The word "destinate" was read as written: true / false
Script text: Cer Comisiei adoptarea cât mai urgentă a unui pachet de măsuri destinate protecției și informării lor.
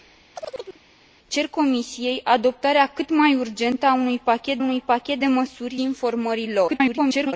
false